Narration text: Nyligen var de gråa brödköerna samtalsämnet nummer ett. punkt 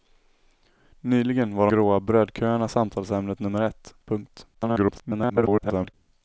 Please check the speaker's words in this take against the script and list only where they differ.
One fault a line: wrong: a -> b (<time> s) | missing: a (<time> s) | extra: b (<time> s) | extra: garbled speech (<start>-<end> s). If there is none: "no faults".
missing: de (1.7 s)
extra: garbled speech (4.5-5.9 s)